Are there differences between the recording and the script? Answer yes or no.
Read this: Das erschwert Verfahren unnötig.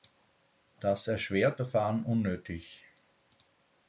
no